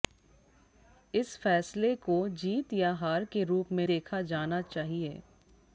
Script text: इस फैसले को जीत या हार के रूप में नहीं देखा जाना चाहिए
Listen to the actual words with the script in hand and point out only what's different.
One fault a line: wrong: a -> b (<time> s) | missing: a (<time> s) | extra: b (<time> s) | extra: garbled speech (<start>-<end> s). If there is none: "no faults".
missing: नहीं (3.9 s)